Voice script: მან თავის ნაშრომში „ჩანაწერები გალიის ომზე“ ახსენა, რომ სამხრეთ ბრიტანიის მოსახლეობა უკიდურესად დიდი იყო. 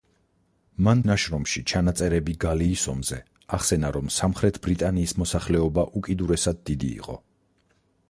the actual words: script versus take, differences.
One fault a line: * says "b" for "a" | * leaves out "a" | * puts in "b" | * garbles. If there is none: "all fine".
* leaves out "თავის"